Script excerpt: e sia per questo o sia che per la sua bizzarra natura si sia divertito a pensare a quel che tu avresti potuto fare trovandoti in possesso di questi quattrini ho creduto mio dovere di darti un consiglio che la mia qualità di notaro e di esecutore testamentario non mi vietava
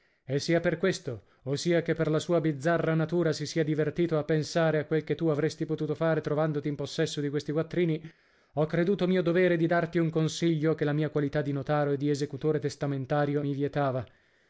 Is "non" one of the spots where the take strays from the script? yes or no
yes